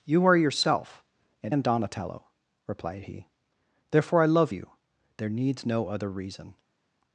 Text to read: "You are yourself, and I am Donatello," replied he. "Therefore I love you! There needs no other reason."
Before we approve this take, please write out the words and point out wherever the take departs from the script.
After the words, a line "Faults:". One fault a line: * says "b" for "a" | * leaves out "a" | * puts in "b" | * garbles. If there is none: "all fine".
"You are yourself, and am Donatello," replied he. "Therefore I love you! There needs no other reason."
Faults:
* leaves out "I"